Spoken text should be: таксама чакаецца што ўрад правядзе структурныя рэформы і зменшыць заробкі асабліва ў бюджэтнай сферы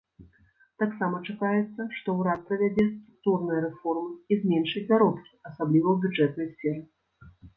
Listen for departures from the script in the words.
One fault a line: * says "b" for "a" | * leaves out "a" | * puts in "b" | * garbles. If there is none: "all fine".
all fine